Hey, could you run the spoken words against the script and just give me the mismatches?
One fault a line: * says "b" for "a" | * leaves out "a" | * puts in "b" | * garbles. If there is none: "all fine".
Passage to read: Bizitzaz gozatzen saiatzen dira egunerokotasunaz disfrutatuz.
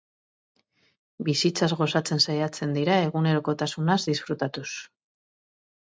all fine